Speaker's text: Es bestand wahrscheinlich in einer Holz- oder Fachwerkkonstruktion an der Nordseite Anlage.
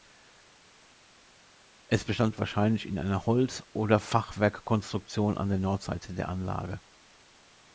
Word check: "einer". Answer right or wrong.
right